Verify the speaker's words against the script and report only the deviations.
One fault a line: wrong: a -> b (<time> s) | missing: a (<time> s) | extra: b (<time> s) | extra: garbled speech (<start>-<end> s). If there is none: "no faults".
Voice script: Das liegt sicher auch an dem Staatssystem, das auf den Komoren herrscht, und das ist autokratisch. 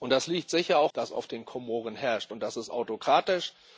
missing: an dem Staatssystem (0.9 s)